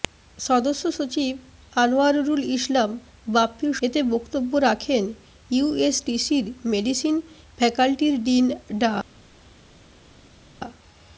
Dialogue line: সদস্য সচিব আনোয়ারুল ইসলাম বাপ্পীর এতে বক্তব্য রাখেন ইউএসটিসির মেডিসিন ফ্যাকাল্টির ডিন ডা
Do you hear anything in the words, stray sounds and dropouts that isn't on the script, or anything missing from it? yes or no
no